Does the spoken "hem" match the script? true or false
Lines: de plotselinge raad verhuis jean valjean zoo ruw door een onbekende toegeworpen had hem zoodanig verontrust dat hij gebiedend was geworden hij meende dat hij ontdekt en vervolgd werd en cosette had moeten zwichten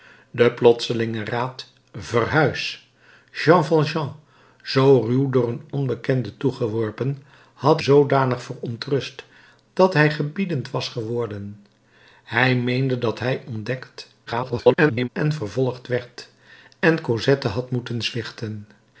false